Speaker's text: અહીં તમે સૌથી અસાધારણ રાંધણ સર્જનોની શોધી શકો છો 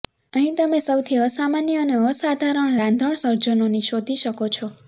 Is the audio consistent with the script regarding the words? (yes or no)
no